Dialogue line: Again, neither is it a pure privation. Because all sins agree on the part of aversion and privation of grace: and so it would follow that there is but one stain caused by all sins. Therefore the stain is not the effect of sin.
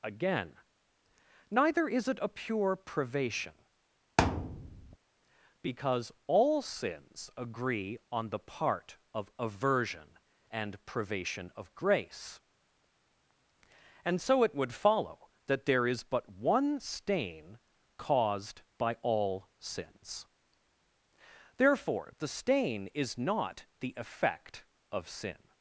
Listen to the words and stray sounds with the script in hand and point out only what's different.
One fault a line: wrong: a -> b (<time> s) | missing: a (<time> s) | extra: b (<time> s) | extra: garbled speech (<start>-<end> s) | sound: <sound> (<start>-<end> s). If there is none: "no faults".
sound: thud (4.2-5.0 s)